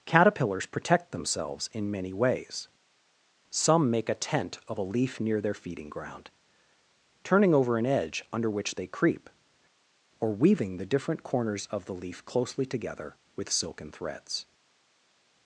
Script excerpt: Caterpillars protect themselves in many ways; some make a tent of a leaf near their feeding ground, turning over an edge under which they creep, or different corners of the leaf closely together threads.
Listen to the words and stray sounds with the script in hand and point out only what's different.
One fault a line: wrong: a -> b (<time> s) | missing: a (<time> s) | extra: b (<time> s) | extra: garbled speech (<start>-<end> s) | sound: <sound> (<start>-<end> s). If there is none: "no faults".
extra: weaving the (10.3 s)
extra: with silken (13.3 s)